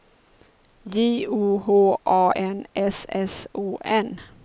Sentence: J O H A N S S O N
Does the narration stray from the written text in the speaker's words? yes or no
no